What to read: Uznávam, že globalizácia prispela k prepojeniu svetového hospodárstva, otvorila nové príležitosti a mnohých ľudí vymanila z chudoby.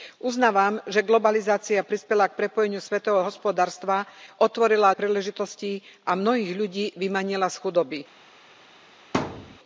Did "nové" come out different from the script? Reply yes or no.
yes